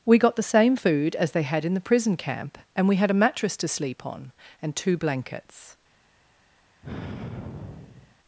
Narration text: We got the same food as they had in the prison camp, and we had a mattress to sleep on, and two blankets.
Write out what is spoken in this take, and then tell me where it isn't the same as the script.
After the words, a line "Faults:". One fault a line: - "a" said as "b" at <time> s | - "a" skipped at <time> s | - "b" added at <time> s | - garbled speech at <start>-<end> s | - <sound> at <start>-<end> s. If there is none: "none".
We got the same food as they had in the prison camp, and we had a mattress to sleep on, and two blankets.
Faults:
- sigh at 6.8-8.2 s